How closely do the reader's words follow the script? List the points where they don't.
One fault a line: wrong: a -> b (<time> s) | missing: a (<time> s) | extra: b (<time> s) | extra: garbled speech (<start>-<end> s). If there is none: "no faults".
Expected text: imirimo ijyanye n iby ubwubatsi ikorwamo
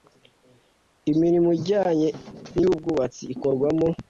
missing: iby (2.6 s)